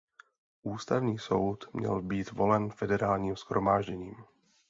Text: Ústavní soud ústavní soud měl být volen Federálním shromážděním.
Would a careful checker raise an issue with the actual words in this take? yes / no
yes